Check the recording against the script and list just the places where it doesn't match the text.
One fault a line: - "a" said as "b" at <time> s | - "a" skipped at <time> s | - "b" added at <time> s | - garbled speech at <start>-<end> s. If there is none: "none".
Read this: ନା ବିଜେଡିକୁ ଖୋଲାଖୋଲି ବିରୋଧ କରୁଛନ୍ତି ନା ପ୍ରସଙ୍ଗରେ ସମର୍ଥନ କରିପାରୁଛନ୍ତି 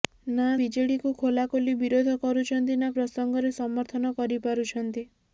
none